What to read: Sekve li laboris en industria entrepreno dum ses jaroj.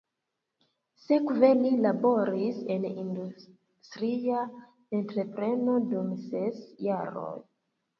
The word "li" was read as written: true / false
true